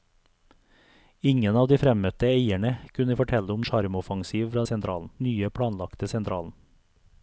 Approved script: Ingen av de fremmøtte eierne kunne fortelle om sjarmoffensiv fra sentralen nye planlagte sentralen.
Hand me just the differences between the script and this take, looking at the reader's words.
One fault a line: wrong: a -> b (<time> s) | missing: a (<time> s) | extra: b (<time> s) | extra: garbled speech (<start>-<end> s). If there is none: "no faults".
no faults